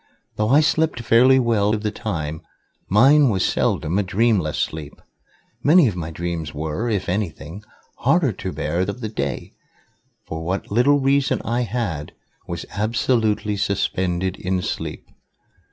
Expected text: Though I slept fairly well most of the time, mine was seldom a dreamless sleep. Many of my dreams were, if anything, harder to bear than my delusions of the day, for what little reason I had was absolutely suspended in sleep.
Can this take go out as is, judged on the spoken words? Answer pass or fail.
fail